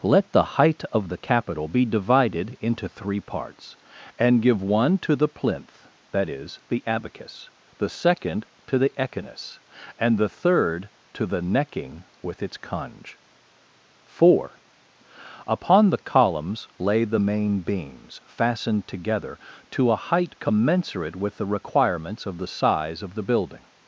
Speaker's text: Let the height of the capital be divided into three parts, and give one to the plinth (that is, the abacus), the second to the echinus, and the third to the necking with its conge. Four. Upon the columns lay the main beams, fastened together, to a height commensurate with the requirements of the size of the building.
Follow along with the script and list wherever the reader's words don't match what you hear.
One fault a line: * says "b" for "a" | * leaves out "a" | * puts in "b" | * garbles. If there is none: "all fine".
all fine